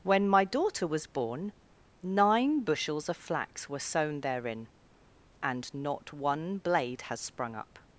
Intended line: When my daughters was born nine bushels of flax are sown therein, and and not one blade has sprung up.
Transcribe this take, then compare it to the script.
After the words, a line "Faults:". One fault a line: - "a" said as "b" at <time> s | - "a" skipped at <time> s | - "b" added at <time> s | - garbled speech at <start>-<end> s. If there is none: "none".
When my daughter was born nine bushels of flax were sown therein, and not one blade has sprung up.
Faults:
- "daughters" said as "daughter" at 0.5 s
- "are" said as "were" at 3.7 s
- "and" skipped at 5.7 s